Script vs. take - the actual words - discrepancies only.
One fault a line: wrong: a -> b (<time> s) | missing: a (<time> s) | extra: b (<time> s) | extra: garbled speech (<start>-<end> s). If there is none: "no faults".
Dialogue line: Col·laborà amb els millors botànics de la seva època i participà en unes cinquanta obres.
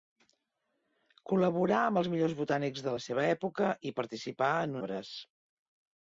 missing: unes cinquanta (4.8 s)